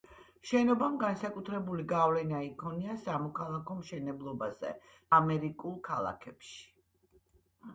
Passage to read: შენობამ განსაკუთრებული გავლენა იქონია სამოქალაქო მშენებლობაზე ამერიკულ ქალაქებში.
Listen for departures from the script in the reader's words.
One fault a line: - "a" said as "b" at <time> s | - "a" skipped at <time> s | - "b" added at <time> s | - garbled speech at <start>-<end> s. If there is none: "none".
none